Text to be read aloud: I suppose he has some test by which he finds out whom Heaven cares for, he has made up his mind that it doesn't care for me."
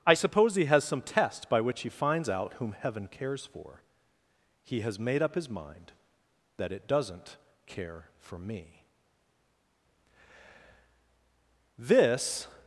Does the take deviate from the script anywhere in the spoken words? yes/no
yes